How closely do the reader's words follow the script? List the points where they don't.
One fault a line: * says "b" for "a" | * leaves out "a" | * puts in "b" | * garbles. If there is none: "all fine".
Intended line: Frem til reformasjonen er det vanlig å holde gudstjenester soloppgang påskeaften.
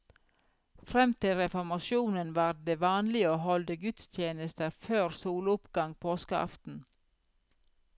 * says "var" for "er"
* puts in "før"